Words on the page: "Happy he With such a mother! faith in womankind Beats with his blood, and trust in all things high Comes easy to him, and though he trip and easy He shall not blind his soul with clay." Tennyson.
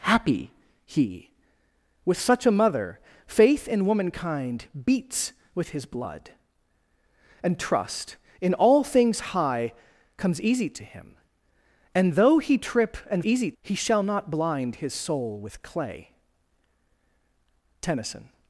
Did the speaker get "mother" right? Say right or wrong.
right